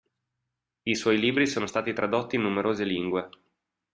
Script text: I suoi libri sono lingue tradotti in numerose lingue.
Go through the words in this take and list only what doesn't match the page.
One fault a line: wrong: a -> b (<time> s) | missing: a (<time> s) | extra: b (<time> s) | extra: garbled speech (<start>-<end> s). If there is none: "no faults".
wrong: lingue -> stati (1.7 s)